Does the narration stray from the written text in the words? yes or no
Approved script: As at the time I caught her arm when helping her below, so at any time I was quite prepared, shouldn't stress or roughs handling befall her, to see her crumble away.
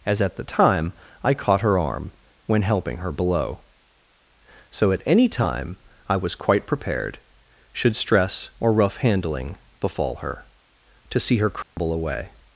yes